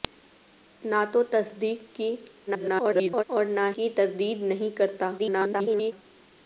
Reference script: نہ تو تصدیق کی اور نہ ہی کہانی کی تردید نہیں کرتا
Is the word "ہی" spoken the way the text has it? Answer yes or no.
no